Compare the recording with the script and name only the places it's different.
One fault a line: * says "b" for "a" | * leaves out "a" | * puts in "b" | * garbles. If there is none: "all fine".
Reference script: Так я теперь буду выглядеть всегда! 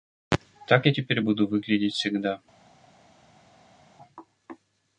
all fine